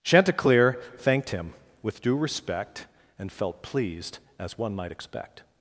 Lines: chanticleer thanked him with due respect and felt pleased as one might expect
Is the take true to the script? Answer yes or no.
yes